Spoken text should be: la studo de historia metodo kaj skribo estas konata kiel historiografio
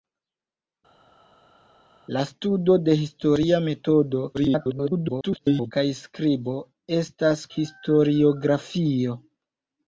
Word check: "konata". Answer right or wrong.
wrong